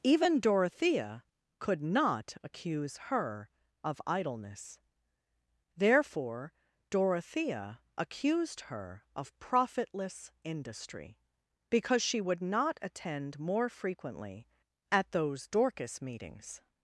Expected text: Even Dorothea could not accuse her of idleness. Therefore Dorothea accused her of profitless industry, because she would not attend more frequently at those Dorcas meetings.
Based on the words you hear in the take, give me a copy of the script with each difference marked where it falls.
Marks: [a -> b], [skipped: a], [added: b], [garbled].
Even Dorothea could not accuse her of idleness. Therefore Dorothea accused her of profitless industry, because she would not attend more frequently at those Dorcas meetings.